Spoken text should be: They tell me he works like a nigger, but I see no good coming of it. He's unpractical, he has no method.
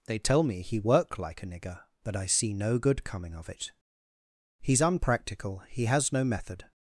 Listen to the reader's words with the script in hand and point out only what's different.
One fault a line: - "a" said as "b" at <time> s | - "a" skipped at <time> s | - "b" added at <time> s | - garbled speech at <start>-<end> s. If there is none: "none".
- "works" said as "work" at 0.8 s